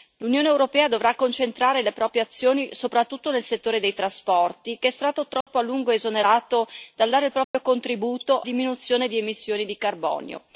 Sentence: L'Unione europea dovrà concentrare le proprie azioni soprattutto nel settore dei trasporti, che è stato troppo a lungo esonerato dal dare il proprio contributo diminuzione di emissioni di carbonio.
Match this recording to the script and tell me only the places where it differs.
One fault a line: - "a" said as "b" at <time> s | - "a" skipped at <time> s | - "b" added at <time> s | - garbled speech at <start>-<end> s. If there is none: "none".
none